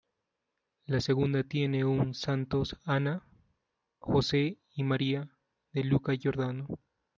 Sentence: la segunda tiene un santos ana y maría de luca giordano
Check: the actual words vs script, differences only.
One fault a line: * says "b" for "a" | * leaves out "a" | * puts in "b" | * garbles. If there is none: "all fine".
* puts in "jose"